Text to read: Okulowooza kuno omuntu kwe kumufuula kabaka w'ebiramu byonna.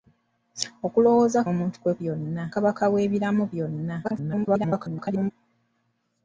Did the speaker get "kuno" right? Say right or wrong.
wrong